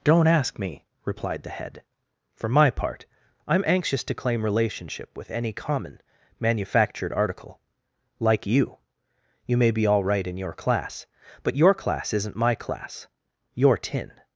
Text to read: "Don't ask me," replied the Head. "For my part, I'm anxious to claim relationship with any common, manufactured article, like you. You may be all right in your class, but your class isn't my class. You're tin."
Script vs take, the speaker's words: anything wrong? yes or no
no